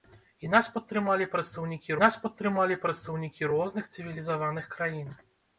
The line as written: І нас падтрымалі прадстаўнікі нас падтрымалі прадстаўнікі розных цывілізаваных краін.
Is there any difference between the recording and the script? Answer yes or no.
no